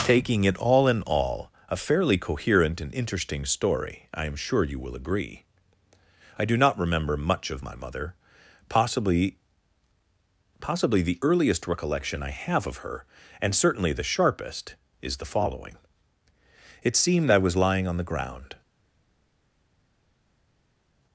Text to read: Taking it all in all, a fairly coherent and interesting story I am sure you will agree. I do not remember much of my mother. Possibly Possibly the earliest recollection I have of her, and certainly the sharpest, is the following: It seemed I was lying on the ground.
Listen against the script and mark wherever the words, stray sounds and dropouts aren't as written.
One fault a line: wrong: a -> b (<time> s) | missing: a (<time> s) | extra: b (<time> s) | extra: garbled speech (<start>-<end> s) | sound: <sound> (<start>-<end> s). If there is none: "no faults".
no faults